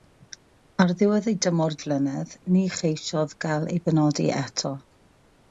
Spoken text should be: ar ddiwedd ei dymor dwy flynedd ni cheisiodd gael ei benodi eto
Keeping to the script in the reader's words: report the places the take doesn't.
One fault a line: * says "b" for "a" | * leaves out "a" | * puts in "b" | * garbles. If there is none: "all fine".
* leaves out "dwy"